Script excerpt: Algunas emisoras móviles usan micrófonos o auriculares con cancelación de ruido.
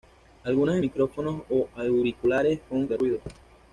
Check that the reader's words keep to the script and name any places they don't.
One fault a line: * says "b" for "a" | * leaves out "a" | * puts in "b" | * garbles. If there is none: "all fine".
* leaves out "emisoras móviles usan"
* leaves out "cancelación"